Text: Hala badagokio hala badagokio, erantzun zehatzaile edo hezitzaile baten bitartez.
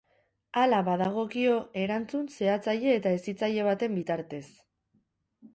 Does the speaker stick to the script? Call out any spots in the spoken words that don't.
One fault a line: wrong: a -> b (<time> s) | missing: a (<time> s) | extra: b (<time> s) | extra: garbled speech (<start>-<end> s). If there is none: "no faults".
missing: hala badagokio (1.6 s)
wrong: edo -> eta (3.0 s)